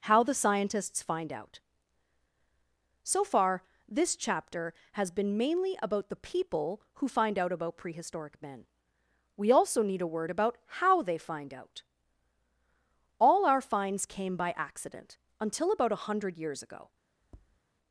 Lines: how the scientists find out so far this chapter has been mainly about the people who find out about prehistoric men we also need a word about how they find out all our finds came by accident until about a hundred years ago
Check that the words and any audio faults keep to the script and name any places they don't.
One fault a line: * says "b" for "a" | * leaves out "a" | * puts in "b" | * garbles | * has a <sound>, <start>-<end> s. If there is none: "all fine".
* has a tap, 17.2-17.6 s